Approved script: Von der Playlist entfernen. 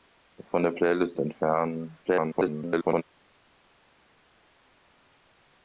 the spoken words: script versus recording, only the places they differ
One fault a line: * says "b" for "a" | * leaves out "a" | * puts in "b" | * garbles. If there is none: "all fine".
* garbles